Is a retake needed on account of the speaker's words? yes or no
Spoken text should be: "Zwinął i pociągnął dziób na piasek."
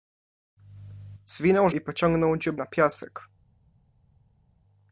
no